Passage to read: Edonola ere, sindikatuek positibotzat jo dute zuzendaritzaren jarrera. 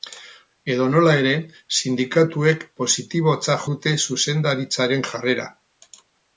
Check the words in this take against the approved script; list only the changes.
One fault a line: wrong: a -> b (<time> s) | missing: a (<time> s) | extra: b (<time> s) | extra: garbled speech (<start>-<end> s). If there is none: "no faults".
missing: jo (3.6 s)